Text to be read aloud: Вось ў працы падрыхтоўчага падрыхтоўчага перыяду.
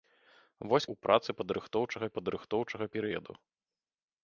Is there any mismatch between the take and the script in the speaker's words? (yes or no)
no